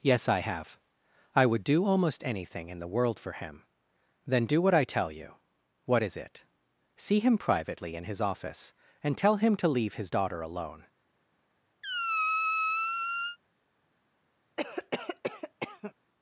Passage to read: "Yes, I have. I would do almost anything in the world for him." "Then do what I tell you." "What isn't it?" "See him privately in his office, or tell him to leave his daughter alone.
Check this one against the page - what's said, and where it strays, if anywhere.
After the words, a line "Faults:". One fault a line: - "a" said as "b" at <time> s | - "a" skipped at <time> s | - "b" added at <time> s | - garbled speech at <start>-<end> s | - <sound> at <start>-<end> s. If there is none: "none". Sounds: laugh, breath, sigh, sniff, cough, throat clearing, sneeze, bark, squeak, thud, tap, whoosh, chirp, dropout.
"Yes, I have. I would do almost anything in the world for him." "Then do what I tell you." "What is it?" "See him privately in his office, and tell him to leave his daughter alone.
Faults:
- "isn't" said as "is" at 6.0 s
- "or" said as "and" at 9.0 s
- squeak at 11.8-13.4 s
- cough at 14.6-15.9 s